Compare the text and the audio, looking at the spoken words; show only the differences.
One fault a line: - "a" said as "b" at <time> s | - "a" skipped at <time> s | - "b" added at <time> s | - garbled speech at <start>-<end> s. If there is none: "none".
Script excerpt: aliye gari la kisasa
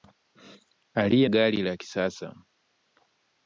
none